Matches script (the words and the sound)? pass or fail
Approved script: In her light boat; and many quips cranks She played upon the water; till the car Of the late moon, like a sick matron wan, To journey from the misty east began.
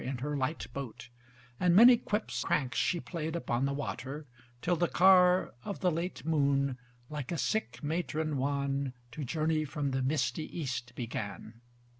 pass